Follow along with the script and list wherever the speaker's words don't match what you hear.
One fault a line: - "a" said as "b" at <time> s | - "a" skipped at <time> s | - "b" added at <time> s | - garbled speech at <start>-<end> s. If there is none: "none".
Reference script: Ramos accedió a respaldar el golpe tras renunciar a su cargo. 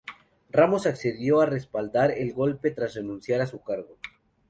none